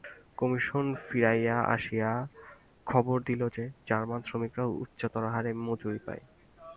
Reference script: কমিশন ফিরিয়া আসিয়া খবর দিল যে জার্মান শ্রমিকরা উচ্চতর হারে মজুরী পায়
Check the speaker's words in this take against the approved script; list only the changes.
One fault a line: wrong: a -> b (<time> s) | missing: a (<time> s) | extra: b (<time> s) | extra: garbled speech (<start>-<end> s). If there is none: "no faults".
no faults